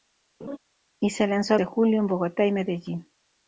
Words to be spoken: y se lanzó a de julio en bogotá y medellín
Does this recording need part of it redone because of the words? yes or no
no